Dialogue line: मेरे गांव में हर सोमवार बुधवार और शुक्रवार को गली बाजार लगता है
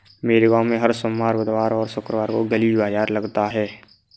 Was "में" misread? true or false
false